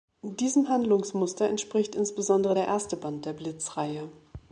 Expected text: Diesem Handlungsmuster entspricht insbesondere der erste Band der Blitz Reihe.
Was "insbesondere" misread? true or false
false